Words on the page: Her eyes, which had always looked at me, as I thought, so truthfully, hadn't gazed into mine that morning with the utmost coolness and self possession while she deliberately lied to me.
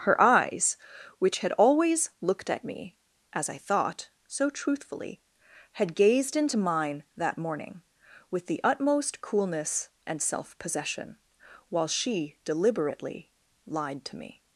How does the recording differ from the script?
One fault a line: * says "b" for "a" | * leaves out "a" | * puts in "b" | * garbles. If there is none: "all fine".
* says "had" for "hadn't"